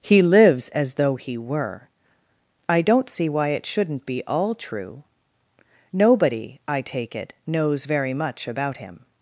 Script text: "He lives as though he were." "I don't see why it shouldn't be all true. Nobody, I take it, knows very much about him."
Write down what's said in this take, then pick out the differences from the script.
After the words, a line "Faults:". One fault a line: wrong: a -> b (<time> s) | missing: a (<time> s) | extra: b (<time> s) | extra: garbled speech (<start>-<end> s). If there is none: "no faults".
"He lives as though he were." "I don't see why it shouldn't be all true. Nobody, I take it, knows very much about him."
Faults:
no faults